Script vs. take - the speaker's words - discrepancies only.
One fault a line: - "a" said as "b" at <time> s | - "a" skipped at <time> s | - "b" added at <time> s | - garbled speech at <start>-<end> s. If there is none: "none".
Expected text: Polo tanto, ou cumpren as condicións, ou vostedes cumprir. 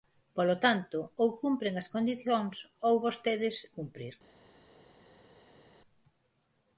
none